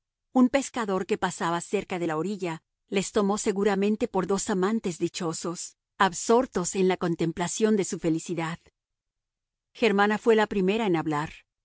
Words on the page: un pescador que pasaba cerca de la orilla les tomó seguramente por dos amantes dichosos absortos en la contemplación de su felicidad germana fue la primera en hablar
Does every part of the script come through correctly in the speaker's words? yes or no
yes